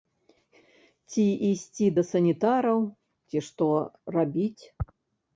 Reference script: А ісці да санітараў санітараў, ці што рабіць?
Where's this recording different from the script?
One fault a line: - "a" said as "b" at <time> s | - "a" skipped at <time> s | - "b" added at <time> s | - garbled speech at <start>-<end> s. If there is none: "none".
- "А" said as "Ці" at 1.1 s
- "санітараў" skipped at 2.8 s